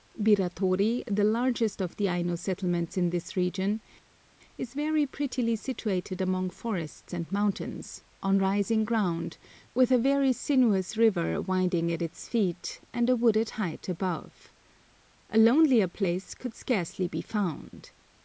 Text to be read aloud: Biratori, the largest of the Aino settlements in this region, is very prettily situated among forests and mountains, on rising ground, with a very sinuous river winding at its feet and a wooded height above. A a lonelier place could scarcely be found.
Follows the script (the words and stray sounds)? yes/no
no